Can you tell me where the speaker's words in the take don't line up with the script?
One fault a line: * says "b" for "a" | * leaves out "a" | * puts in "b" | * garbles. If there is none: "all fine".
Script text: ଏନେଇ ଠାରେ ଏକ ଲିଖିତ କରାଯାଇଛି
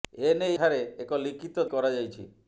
all fine